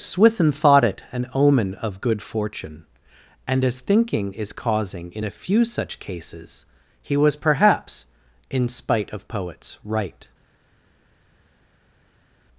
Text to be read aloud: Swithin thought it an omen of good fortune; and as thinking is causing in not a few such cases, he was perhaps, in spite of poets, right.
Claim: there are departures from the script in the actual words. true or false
true